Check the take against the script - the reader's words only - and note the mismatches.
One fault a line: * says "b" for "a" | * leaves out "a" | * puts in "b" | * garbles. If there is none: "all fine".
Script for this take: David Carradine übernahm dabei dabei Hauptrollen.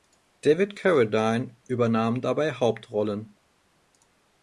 * leaves out "dabei"